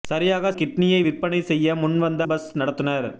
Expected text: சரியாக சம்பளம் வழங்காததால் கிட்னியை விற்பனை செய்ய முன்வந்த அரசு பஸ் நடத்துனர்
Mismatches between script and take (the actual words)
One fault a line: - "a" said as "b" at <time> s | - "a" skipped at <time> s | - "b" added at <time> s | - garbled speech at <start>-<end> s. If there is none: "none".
- "சம்பளம் வழங்காததால்" skipped at 0.5 s
- "அரசு" skipped at 2.2 s